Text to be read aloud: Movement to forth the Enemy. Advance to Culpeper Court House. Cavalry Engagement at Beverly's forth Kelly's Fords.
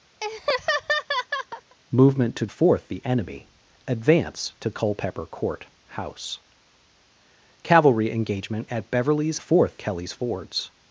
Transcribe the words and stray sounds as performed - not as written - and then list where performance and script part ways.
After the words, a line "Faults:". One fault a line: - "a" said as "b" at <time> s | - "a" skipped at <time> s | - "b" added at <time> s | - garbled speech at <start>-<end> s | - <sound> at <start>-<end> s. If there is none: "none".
Movement to forth the Enemy. Advance to Culpeper Court House. Cavalry Engagement at Beverly's forth Kelly's Fords.
Faults:
- laugh at 0.2-1.8 s